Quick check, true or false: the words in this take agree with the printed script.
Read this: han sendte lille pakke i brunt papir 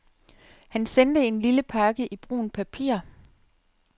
false